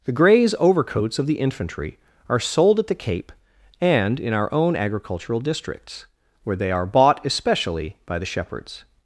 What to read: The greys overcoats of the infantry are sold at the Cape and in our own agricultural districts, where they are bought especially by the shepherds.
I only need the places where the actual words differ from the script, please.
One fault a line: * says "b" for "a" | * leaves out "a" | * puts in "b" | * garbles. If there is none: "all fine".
all fine